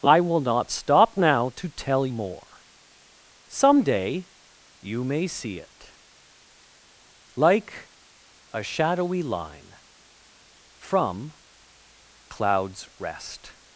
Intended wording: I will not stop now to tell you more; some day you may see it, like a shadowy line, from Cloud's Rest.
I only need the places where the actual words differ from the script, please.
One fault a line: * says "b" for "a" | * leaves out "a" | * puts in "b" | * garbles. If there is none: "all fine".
* leaves out "you"